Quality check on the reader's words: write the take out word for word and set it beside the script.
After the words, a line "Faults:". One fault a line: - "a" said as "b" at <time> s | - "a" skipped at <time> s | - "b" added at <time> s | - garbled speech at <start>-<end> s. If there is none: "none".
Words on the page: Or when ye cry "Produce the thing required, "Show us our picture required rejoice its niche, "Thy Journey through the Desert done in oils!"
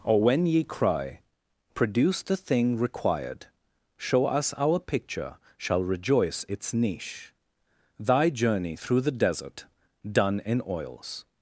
Or when ye cry "Produce the thing required, "Show us our picture shall rejoice its niche, "Thy Journey through the Desert done in oils!"
Faults:
- "required" said as "shall" at 5.6 s